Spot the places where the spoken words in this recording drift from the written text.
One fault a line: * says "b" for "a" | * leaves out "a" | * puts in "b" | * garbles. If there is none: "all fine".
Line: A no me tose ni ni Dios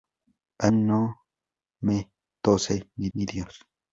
all fine